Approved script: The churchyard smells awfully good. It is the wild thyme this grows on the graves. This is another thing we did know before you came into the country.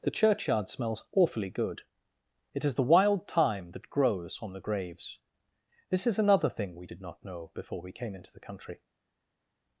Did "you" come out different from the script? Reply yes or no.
yes